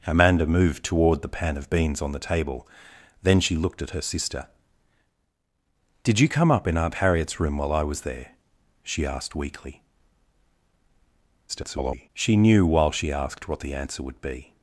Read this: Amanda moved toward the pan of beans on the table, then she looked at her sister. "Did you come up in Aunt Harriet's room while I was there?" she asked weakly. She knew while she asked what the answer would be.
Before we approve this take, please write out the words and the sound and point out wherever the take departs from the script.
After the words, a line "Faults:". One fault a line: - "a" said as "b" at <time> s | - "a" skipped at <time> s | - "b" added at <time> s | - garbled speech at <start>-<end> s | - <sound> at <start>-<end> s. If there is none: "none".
Amanda moved toward the pan of beans on the table, then she looked at her sister. "Did you come up in Aunt Harriet's room while I was there?" she asked weakly. [garbled] She knew while she asked what the answer would be.
Faults:
- garbled speech at 11.5-12.1 s